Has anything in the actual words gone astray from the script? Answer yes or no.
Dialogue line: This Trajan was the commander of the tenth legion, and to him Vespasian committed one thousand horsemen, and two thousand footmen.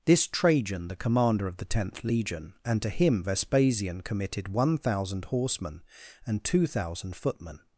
yes